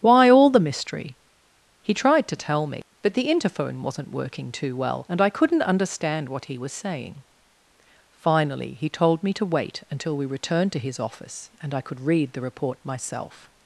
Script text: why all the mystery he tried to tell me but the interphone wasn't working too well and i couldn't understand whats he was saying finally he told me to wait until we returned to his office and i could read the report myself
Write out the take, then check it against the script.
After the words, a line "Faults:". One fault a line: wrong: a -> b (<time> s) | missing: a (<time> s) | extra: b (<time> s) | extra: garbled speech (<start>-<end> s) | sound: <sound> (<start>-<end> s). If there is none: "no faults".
why all the mystery he tried to tell me but the interphone wasn't working too well and i couldn't understand what he was saying finally he told me to wait until we returned to his office and i could read the report myself
Faults:
wrong: whats -> what (6.3 s)